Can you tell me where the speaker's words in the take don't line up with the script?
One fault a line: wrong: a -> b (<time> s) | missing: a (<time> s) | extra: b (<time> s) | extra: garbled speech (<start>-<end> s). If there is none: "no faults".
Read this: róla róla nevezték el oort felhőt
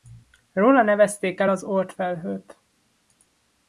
missing: róla (0.8 s)
extra: az (1.5 s)